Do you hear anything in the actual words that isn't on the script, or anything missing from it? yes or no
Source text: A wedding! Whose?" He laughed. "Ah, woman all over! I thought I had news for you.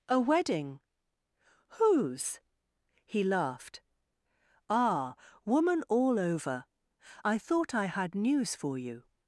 no